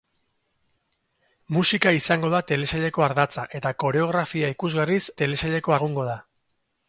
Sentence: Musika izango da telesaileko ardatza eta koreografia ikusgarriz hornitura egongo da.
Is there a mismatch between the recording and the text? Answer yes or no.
yes